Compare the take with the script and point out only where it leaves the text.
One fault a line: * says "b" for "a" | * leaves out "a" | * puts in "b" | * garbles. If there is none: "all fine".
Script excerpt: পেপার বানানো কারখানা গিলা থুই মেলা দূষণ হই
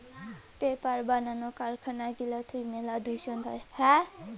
all fine